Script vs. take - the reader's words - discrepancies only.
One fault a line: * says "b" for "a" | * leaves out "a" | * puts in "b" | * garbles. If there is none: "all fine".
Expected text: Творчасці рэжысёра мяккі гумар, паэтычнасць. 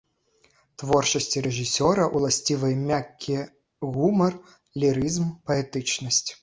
* puts in "ўласцівыя"
* puts in "лірызм"